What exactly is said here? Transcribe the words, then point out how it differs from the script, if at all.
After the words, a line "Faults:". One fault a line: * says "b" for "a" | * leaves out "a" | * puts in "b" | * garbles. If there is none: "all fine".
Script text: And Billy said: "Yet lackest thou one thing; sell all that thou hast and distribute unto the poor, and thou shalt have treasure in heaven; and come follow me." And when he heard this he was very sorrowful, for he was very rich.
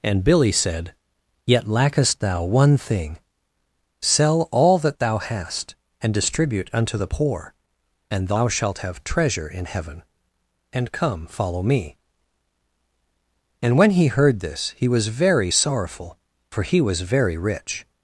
And Billy said: "Yet lackest thou one thing; sell all that thou hast and distribute unto the poor, and thou shalt have treasure in heaven; and come follow me." And when he heard this he was very sorrowful, for he was very rich.
Faults:
all fine